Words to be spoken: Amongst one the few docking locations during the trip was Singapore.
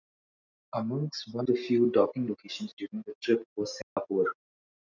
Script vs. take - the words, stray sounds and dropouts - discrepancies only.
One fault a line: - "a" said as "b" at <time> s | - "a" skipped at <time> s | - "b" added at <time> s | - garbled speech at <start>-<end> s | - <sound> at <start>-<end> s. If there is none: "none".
- dropout at 3.8-4.0 s